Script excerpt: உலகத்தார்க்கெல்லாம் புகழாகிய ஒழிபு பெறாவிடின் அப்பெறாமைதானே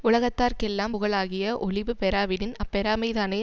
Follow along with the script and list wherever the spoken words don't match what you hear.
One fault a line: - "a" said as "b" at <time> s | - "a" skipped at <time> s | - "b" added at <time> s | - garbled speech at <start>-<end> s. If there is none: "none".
none